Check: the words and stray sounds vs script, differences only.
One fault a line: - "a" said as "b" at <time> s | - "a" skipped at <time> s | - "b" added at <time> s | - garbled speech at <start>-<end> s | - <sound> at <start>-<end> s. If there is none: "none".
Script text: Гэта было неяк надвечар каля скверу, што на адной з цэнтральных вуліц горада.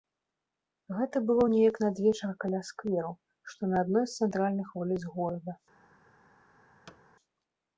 - thud at 6.9-7.0 s